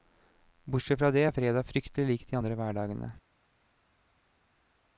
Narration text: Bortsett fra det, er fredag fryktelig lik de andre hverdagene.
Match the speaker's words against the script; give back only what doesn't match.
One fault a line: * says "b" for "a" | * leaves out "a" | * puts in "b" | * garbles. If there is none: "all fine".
all fine